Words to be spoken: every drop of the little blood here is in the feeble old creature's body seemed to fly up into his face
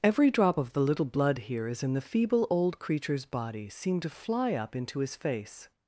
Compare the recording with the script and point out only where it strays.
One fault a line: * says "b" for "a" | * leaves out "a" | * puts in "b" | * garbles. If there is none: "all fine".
all fine